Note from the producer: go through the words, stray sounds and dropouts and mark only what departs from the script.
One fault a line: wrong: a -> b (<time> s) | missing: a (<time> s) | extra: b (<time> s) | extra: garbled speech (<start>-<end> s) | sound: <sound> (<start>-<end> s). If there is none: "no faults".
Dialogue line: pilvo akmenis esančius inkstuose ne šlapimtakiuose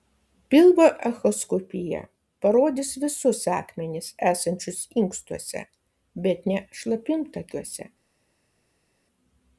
extra: echoskopija parodys visus (1.1 s)
extra: bet (6.3 s)